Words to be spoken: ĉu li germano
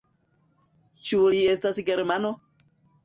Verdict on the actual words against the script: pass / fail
fail